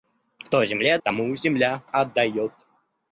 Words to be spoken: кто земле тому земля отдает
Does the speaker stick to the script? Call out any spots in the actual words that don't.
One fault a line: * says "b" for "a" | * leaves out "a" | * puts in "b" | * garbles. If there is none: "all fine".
all fine